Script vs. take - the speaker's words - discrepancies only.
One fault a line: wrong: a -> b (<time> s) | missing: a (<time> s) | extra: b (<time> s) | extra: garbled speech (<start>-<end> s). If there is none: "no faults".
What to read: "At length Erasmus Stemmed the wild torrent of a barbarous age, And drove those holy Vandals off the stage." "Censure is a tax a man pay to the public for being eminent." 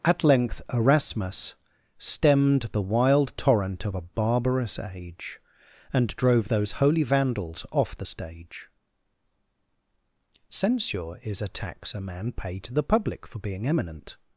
no faults